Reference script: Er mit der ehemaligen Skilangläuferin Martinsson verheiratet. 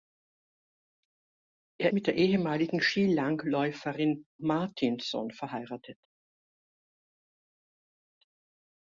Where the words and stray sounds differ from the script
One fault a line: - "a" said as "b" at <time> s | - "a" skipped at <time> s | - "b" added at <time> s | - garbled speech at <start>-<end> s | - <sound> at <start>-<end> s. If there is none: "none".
none